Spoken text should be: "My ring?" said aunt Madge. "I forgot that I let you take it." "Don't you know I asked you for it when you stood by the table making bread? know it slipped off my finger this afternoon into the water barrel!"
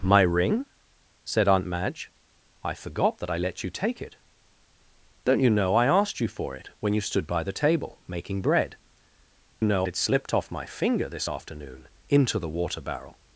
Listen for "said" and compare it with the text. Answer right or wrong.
right